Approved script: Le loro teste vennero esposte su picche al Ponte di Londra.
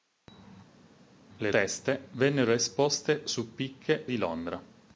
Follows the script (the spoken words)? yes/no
no